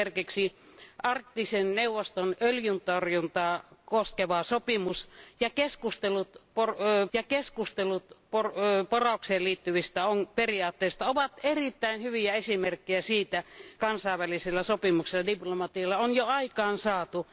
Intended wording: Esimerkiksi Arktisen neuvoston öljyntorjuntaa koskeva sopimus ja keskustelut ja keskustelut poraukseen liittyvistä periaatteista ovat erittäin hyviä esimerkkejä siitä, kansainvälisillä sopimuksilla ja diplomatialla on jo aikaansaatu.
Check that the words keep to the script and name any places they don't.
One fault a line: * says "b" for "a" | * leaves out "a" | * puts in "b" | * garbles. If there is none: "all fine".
all fine